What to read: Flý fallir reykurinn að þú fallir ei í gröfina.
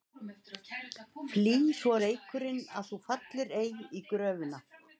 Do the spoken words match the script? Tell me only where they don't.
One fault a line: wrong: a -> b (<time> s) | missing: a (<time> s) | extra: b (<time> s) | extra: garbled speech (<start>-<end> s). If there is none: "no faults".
wrong: fallir -> svo (1.8 s)